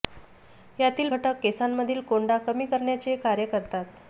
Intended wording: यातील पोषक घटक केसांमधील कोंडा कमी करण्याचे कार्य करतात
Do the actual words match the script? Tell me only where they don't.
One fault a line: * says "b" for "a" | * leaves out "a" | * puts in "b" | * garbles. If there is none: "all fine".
* leaves out "पोषक"